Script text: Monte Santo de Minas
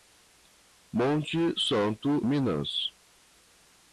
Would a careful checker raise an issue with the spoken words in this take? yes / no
yes